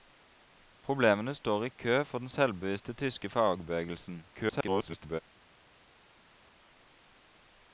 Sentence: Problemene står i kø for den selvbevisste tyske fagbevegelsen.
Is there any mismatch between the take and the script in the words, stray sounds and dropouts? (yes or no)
yes